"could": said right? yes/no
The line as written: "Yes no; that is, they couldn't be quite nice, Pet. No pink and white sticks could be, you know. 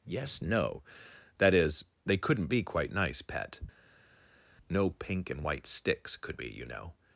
yes